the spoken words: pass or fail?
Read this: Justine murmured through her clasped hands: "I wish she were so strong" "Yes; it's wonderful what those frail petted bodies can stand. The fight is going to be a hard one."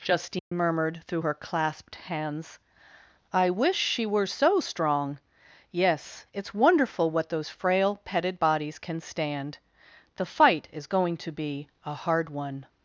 pass